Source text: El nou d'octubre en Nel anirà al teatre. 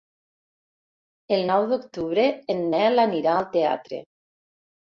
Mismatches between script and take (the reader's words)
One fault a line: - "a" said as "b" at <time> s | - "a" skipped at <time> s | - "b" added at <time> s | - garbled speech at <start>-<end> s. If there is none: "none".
none